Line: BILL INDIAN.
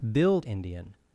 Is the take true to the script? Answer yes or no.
yes